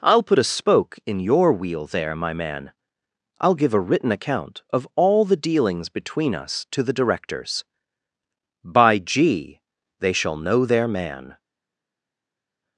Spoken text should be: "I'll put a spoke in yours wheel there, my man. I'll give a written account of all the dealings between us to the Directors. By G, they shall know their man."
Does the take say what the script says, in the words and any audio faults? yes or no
no